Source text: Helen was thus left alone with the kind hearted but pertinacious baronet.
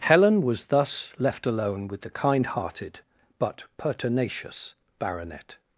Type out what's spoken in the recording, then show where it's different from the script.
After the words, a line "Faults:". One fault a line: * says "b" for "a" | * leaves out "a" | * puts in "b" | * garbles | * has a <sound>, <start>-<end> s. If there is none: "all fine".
Helen was thus left alone with the kind hearted but pertinacious baronet.
Faults:
all fine